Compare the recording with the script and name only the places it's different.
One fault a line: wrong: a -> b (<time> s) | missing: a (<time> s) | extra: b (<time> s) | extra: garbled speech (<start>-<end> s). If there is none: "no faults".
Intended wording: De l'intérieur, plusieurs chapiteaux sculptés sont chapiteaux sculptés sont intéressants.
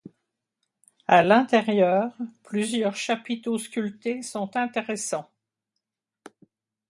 wrong: De -> À (1.1 s)
missing: chapiteaux sculptés sont (4.6 s)